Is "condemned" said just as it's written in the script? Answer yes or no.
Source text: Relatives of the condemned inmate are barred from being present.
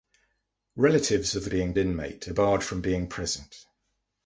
no